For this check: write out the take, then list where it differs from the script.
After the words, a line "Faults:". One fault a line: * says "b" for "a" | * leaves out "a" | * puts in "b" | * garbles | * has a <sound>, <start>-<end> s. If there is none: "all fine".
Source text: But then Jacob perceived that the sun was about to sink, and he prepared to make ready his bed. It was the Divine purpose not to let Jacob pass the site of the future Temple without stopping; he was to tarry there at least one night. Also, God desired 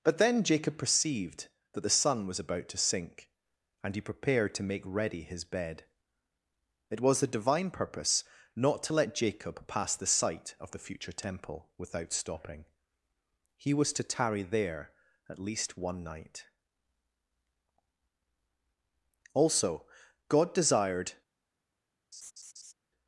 But then Jacob perceived that the sun was about to sink, and he prepared to make ready his bed. It was the Divine purpose not to let Jacob pass the site of the future Temple without stopping; he was to tarry there at least one night. Also, God desired
Faults:
* has a laugh, 22.1-22.7 s